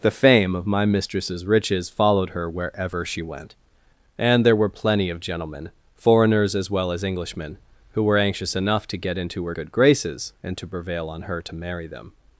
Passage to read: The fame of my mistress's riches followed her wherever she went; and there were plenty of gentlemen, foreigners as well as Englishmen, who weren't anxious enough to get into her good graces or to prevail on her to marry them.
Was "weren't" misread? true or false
true